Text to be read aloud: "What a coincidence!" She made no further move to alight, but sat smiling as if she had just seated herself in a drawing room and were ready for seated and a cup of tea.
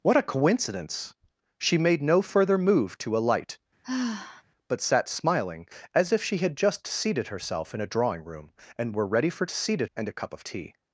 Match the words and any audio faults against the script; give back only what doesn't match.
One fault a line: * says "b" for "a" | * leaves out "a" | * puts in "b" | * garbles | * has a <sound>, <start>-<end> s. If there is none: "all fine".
* has a sigh, 3.8-4.4 s